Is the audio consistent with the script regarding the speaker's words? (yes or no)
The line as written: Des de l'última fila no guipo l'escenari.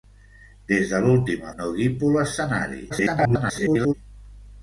no